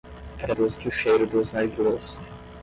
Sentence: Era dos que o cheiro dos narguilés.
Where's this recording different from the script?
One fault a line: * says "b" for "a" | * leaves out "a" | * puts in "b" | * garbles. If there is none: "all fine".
all fine